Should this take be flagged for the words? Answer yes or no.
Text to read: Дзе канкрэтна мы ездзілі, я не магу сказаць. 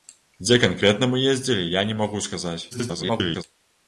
yes